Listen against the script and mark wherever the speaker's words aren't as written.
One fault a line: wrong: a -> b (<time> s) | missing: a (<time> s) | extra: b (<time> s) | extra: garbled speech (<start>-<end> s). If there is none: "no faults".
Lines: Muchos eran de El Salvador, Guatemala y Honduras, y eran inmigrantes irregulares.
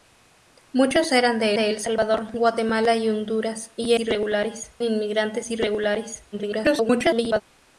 extra: de (1.5 s)
wrong: eran -> irregulares (4.0 s)
extra: garbled speech (6.3-7.4 s)